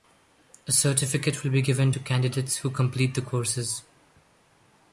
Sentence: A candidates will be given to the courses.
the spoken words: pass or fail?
fail